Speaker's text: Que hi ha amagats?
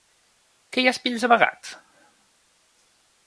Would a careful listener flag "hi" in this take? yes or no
no